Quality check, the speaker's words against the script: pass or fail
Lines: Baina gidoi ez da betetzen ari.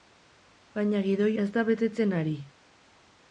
pass